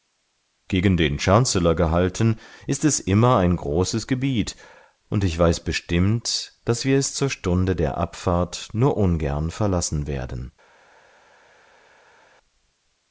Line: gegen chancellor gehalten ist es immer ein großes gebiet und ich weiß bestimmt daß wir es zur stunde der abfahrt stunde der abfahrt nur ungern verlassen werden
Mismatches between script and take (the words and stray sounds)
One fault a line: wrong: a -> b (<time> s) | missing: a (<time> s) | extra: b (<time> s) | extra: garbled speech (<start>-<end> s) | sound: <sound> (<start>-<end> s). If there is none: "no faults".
extra: den (1.0 s)
missing: stunde der abfahrt (8.7 s)